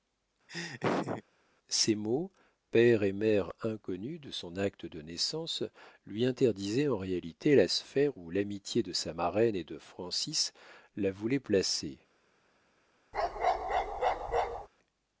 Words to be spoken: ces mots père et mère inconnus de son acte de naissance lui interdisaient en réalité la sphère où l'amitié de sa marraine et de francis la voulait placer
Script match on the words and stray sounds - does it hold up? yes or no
no